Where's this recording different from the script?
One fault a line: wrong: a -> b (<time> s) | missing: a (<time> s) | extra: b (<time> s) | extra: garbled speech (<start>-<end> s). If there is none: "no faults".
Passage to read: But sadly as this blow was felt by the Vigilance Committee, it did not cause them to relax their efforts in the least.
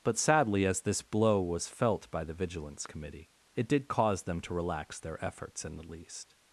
missing: not (3.9 s)